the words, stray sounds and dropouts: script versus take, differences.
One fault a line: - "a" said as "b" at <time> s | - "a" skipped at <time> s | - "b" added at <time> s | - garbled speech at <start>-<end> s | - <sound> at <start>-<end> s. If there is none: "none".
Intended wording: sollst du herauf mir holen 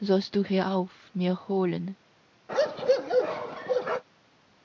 - bark at 2.5-4.0 s